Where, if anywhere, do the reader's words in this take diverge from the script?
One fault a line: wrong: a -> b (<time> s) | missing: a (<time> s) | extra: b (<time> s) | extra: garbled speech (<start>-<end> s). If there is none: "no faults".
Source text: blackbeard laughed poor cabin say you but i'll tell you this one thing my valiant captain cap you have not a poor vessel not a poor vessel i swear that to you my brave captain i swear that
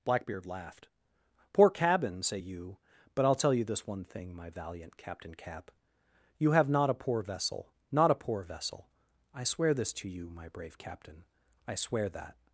wrong: that -> this (9.7 s)